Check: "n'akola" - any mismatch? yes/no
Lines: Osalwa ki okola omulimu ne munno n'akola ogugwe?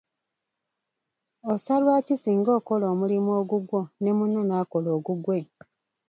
no